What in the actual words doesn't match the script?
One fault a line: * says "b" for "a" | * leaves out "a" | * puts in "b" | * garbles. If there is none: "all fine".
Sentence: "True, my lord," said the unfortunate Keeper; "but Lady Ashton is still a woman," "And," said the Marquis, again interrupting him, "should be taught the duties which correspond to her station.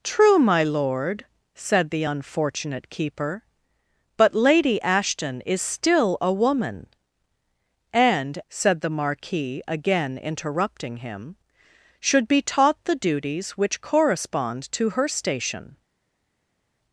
all fine